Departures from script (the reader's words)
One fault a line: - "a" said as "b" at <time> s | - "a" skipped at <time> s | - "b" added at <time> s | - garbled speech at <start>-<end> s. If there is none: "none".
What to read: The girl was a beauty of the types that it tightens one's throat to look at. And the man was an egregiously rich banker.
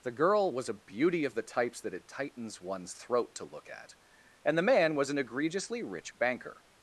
none